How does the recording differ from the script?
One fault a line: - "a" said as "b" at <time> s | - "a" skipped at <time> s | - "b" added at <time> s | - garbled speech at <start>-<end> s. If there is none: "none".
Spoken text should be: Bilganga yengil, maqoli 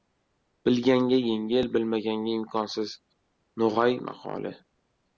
- "bilmaganga imkonsiz No‘g‘ay" added at 1.8 s